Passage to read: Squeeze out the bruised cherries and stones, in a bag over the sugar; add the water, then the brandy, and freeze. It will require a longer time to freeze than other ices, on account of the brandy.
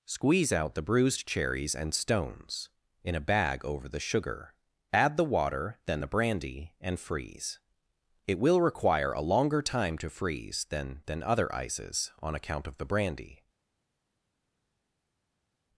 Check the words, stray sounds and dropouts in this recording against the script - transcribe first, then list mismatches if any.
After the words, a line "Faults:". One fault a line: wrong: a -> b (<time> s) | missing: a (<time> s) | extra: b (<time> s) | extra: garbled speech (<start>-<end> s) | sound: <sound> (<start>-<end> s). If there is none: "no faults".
Squeeze out the bruised cherries and stones, in a bag over the sugar; add the water, then the brandy, and freeze. It will require a longer time to freeze than than other ices, on account of the brandy.
Faults:
extra: than (11.0 s)